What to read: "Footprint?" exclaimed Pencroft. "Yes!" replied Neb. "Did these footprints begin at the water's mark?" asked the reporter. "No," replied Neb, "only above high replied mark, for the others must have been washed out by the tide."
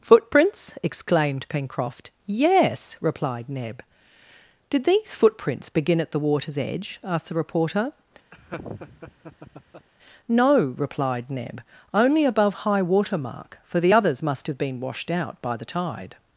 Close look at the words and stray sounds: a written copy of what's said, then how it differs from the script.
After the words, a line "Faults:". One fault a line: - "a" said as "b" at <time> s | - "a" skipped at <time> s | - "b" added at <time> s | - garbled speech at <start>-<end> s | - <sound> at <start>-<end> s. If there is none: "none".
"Footprints?" exclaimed Pencroft. "Yes!" replied Neb. "Did these footprints begin at the water's edge?" asked the reporter. "No," replied Neb, "only above high water mark, for the others must have been washed out by the tide."
Faults:
- "Footprint" said as "Footprints" at 0.0 s
- "mark" said as "edge" at 6.6 s
- laugh at 8.3-9.9 s
- "replied" said as "water" at 12.8 s